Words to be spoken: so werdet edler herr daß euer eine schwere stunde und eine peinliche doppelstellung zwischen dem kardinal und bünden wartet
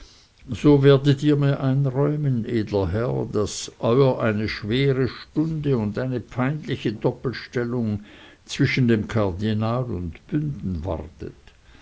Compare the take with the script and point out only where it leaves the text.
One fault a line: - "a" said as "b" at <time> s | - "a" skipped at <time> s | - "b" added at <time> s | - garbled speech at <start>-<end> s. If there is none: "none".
- "ihr mir einräumen" added at 1.2 s